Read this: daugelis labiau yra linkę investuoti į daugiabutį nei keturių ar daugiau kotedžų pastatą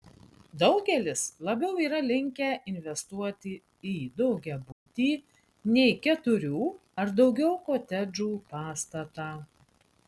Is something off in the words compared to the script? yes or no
no